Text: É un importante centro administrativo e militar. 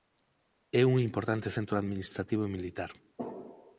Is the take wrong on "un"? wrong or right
right